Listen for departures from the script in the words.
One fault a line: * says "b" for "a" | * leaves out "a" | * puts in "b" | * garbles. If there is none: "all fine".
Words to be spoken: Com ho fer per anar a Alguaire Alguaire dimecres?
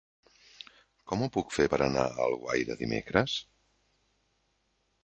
* puts in "puc"
* leaves out "Alguaire"